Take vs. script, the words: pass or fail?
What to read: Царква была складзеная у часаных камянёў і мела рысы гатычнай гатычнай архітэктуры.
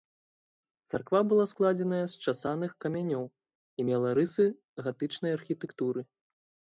fail